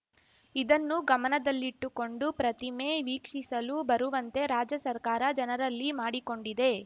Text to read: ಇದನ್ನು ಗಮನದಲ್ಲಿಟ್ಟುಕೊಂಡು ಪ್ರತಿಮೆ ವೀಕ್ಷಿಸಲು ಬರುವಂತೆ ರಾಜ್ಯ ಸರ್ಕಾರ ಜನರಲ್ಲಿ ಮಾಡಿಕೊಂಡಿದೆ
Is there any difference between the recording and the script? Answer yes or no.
no